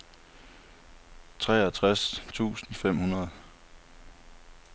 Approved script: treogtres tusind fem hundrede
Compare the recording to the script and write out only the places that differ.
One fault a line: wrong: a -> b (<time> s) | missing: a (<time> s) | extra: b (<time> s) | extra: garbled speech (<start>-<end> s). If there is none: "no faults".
no faults